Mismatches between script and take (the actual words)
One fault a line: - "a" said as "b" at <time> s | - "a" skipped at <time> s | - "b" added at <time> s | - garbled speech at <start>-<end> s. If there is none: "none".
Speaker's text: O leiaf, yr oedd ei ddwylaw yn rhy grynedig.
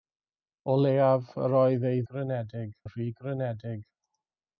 - "ddwylaw" said as "grynedig" at 2.1 s